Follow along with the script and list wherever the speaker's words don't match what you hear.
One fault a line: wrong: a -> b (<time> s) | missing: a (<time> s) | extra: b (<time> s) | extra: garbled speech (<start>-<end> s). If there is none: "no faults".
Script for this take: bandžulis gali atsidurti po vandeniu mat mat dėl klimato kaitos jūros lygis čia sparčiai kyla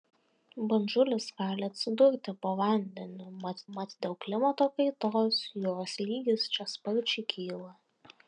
no faults